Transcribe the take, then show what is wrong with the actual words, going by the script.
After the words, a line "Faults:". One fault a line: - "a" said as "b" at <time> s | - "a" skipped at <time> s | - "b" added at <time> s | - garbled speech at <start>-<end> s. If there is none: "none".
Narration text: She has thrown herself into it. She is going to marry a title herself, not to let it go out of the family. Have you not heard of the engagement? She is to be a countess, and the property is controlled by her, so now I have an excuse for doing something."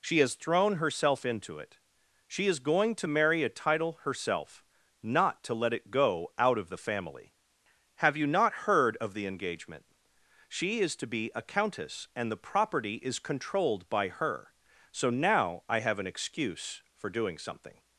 She has thrown herself into it. She is going to marry a title herself, not to let it go out of the family. Have you not heard of the engagement? She is to be a countess, and the property is controlled by her, so now I have an excuse for doing something."
Faults:
none